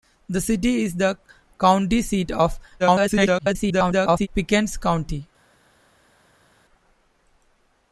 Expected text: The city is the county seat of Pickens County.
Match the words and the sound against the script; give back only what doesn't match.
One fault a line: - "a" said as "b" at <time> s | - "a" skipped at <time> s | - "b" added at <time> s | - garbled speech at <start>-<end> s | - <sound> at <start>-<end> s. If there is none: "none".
- garbled speech at 2.8-4.3 s